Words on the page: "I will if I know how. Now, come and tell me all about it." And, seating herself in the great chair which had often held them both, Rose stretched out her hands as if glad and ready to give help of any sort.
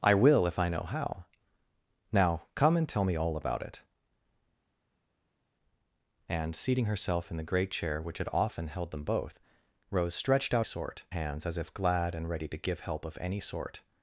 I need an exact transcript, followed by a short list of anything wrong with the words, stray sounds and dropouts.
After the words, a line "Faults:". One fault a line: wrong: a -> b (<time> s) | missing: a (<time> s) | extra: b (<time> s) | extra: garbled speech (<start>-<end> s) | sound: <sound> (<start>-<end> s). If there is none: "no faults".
"I will if I know how. Now, come and tell me all about it." And, seating herself in the great chair which had often held them both, Rose stretched out sort hands as if glad and ready to give help of any sort.
Faults:
wrong: her -> sort (10.6 s)